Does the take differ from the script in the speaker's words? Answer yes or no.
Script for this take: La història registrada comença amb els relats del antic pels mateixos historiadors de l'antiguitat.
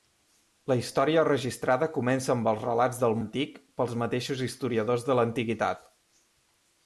no